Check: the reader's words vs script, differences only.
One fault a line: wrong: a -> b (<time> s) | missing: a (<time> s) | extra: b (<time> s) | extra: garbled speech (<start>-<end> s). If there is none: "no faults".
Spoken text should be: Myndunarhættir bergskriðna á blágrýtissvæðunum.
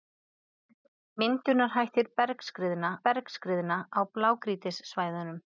extra: bergskriðna (3.1 s)